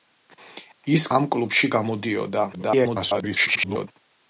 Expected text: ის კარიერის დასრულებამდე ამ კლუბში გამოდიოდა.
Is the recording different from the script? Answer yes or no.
yes